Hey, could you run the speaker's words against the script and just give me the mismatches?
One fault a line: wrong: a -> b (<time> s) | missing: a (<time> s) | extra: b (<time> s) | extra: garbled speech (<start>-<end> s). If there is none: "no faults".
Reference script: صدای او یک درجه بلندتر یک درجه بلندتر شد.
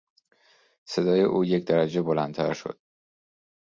missing: یک درجه بلندتر (2.5 s)